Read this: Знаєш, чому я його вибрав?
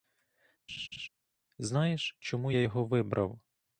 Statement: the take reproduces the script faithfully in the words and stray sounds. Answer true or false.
false